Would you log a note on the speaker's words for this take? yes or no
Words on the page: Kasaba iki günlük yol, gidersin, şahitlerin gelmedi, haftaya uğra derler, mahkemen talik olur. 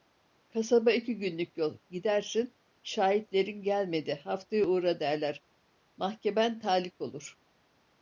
no